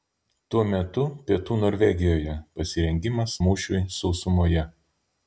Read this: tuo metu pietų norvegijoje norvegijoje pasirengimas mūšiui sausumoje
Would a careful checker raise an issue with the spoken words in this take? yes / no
yes